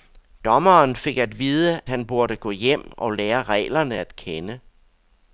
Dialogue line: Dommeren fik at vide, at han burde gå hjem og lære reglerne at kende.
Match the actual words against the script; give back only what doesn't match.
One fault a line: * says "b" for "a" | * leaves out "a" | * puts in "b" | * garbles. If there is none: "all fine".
* leaves out "at"